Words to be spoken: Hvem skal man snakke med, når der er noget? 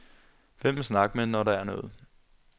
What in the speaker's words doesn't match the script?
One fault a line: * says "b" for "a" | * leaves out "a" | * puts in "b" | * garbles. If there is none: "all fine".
* leaves out "skal"